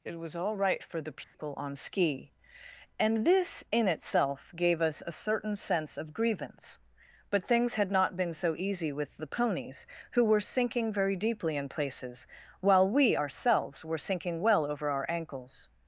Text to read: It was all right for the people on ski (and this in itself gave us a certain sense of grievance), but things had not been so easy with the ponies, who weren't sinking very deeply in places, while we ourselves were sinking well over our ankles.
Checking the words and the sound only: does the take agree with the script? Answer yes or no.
no